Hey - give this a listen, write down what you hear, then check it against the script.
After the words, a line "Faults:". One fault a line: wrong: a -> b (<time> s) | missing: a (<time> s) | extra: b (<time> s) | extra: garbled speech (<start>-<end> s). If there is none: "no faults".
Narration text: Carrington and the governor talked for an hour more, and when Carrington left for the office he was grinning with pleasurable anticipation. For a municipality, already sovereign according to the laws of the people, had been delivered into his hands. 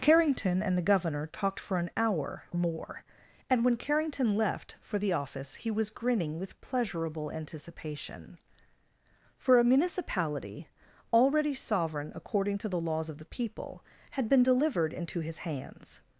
Carrington and the governor talked for an hour more, and when Carrington left for the office he was grinning with pleasurable anticipation. For a municipality, already sovereign according to the laws of the people, had been delivered into his hands.
Faults:
no faults